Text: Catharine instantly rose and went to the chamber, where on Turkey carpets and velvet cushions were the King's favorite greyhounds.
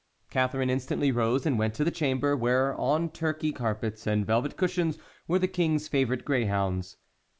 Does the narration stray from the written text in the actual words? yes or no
no